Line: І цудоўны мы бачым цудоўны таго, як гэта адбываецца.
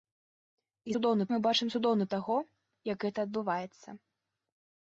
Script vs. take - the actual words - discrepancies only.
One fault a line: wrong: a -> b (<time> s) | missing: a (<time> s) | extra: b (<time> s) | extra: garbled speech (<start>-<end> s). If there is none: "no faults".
no faults